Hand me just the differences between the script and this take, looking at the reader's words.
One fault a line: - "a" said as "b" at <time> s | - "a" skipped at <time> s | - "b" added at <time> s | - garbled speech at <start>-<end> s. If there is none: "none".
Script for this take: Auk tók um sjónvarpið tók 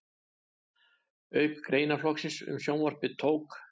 - "tók" said as "greinaflokksins" at 1.7 s